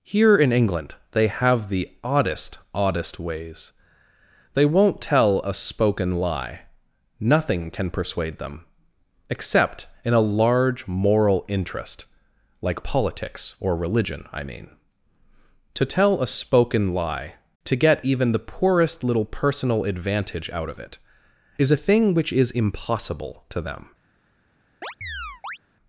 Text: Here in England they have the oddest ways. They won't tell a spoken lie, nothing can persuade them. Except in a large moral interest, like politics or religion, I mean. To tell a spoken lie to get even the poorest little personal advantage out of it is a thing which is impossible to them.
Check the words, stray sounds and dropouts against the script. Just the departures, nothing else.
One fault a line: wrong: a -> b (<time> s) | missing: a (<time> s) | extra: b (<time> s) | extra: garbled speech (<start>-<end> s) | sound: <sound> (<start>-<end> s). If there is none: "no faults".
extra: oddest (2.7 s)
sound: chirp (24.8-25.6 s)